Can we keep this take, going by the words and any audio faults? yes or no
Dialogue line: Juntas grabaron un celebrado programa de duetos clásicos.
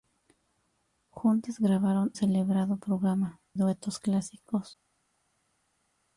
no